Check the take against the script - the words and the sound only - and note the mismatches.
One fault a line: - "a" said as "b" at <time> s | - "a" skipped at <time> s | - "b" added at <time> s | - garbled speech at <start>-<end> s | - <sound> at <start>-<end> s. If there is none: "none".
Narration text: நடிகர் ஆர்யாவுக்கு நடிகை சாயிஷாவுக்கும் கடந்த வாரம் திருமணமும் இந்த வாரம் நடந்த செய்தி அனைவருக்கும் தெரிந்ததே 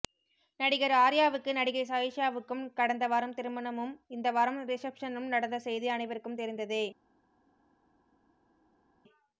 - "ரிசப்ஷனும்" added at 4.7 s